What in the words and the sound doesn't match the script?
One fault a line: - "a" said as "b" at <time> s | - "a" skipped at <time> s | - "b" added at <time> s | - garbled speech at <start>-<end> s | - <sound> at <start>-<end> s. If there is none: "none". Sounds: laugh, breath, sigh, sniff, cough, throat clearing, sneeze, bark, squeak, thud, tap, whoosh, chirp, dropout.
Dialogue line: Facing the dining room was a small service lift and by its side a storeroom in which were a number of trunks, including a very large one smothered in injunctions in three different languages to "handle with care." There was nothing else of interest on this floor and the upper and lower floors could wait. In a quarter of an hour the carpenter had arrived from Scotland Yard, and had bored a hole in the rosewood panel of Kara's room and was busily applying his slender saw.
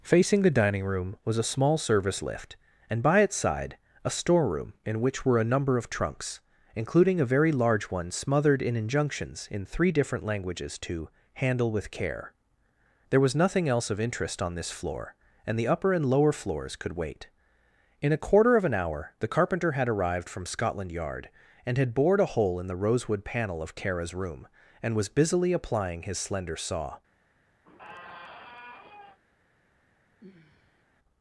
- squeak at 27.6-29.2 s
- sigh at 30.2-30.8 s